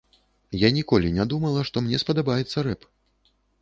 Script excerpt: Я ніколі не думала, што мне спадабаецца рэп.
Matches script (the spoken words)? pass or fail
pass